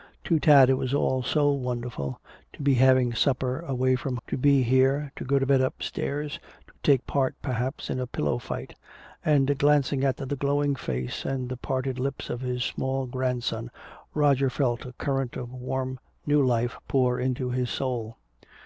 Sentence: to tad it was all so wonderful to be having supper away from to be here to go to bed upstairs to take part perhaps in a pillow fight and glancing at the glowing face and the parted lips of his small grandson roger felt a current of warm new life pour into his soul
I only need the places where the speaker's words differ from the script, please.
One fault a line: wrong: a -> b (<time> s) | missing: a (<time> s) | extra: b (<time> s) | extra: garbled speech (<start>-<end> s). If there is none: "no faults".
no faults